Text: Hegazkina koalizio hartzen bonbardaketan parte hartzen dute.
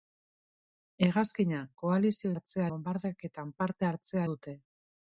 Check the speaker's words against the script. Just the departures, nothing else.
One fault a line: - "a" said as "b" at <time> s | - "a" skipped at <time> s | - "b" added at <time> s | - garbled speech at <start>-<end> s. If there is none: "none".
none